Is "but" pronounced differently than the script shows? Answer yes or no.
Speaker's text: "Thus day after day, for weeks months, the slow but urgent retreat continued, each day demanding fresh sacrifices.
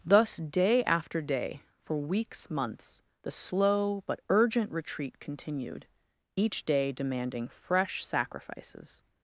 no